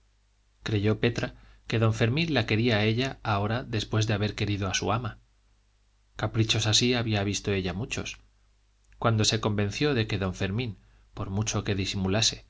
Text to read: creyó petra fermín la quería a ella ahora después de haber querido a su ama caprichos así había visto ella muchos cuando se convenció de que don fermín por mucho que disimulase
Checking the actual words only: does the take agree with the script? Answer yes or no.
no